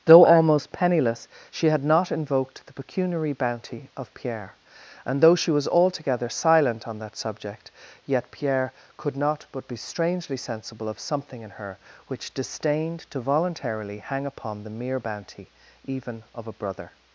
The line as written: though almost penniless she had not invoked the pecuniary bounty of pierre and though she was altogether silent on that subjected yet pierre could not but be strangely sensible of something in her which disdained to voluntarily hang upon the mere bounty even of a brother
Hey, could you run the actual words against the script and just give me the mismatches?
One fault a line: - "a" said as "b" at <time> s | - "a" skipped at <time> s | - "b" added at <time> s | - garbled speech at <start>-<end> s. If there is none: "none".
- "subjected" said as "subject" at 7.2 s